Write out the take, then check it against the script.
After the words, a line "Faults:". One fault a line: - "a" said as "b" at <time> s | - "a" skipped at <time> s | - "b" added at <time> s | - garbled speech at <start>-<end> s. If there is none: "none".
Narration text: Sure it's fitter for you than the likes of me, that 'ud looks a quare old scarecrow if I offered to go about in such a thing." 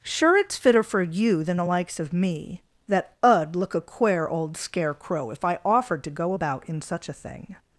Sure it's fitter for you than the likes of me, that 'ud look a quare old scarecrow if I offered to go about in such a thing."
Faults:
- "looks" said as "look" at 3.6 s